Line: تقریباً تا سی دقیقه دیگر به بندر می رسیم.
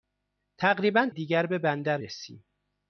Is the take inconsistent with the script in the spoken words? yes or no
yes